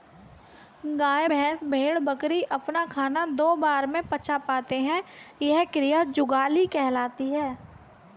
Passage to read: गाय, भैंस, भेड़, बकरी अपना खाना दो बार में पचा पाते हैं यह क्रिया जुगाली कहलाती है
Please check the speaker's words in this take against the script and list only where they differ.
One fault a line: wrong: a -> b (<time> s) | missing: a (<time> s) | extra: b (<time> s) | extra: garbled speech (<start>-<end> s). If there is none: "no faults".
no faults